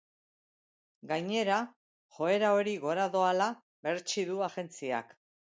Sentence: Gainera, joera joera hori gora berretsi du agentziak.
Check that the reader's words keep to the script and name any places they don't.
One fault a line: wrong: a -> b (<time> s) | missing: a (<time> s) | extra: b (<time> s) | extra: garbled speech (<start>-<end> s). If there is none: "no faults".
missing: joera (2.5 s)
extra: doala (3.2 s)